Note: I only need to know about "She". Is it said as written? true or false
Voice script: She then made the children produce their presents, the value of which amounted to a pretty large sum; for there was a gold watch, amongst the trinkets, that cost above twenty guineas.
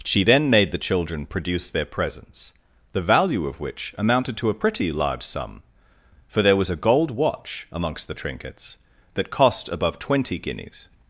true